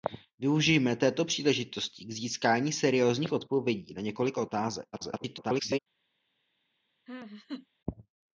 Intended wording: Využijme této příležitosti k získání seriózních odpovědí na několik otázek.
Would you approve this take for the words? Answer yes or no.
no